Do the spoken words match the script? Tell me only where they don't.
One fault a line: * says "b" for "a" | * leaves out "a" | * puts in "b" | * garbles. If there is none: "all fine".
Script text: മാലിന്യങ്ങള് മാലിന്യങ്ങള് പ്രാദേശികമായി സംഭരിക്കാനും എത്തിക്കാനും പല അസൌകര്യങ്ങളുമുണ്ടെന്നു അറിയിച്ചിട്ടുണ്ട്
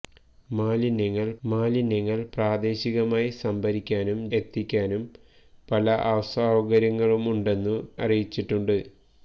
all fine